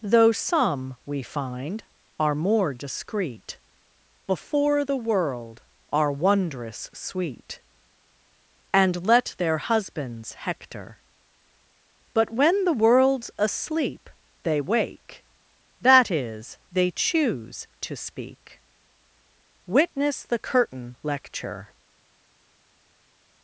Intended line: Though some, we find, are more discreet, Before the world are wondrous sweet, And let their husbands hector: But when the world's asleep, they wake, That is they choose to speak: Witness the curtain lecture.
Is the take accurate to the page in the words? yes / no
yes